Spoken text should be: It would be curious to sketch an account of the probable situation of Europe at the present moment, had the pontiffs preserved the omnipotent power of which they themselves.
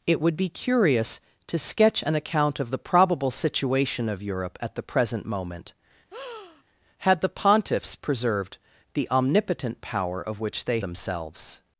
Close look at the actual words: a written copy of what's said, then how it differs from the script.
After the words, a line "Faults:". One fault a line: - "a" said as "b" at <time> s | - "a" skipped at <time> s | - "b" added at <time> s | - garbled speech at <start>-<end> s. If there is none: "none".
It would be curious to sketch an account of the probable situation of Europe at the present moment, had the pontiffs preserved the omnipotent power of which they themselves.
Faults:
none